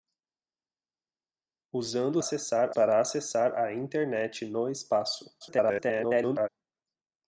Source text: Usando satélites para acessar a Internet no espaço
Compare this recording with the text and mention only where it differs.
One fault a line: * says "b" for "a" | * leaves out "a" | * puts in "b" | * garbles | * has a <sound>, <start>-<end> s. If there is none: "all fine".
* says "acessar" for "satélites"
* garbles